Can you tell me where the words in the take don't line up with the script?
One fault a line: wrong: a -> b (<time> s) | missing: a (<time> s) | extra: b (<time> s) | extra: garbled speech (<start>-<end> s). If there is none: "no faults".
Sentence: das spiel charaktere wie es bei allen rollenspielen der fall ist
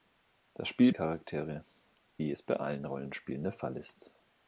no faults